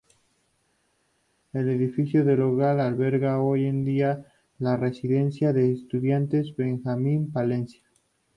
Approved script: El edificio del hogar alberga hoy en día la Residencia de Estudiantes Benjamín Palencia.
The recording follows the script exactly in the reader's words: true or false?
true